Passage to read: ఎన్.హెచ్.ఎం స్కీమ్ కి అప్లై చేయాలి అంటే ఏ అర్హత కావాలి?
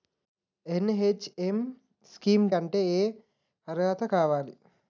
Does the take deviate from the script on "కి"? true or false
true